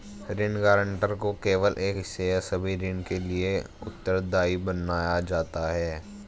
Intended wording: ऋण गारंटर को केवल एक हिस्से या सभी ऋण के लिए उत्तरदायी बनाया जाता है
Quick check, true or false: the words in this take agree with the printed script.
true